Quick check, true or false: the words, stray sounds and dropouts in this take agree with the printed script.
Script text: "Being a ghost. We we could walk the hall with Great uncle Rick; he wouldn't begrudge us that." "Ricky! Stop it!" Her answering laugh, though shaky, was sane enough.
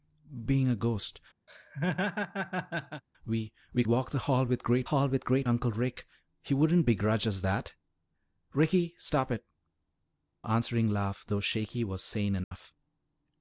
false